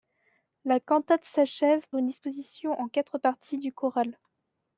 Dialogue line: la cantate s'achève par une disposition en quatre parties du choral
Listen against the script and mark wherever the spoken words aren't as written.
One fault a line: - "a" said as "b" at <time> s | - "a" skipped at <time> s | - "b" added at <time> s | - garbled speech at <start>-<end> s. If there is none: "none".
- "par" skipped at 1.9 s